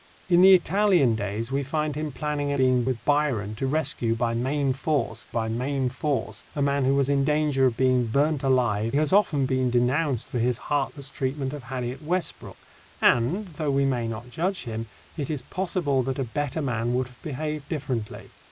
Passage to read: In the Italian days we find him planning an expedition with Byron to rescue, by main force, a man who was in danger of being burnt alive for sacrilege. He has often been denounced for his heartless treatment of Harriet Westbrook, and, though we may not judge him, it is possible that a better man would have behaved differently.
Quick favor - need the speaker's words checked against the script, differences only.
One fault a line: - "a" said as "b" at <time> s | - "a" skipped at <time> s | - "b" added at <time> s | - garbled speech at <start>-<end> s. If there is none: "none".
- "expedition" said as "being" at 2.5 s
- "by main force" added at 5.3 s
- "for sacrilege He" skipped at 8.9 s